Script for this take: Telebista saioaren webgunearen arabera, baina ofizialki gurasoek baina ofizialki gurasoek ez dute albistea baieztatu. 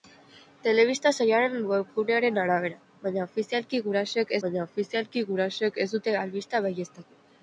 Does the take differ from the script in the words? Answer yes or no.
no